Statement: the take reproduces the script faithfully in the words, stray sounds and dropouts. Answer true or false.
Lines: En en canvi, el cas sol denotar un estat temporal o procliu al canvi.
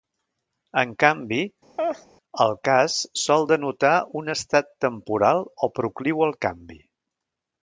false